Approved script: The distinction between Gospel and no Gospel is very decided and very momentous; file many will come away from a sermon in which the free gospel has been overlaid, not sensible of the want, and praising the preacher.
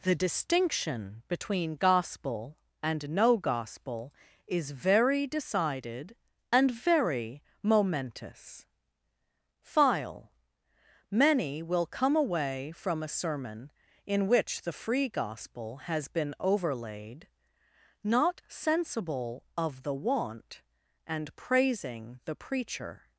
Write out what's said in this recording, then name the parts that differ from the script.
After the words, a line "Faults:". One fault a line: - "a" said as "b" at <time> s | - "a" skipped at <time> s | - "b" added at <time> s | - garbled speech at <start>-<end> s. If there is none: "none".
The distinction between Gospel and no Gospel is very decided and very momentous; file many will come away from a sermon in which the free gospel has been overlaid, not sensible of the want, and praising the preacher.
Faults:
none